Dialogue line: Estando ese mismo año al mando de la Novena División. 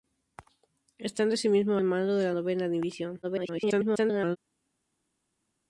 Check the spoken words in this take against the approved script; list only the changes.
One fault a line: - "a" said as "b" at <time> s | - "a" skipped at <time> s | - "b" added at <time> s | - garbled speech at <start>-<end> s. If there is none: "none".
- "año" skipped at 1.8 s
- garbled speech at 3.2-4.4 s